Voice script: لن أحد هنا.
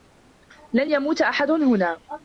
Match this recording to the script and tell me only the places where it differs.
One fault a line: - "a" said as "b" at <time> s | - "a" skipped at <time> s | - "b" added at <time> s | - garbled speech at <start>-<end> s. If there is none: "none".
- "يموت" added at 0.9 s